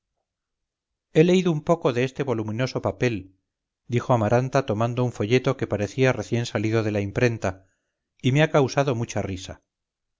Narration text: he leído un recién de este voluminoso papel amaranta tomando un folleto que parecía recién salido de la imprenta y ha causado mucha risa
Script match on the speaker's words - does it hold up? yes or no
no